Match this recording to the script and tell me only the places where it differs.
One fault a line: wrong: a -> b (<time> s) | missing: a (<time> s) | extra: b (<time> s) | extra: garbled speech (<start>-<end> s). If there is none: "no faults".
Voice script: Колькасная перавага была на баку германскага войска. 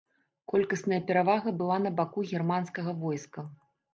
no faults